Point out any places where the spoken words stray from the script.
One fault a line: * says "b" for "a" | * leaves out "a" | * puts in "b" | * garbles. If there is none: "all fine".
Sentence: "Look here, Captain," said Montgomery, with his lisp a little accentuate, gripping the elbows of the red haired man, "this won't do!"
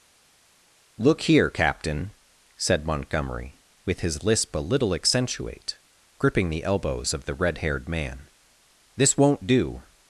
all fine